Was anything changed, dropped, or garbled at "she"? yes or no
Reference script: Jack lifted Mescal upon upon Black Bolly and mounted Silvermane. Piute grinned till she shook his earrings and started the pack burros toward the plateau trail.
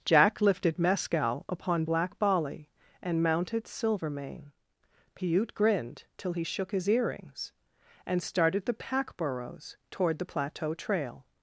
yes